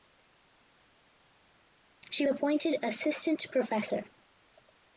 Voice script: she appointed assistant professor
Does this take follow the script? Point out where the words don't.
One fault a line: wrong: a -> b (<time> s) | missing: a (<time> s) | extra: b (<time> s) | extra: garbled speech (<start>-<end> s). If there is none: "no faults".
no faults